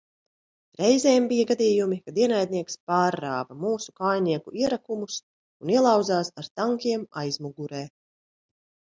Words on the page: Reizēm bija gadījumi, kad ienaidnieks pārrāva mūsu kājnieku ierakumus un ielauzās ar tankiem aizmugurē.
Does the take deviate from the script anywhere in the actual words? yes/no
no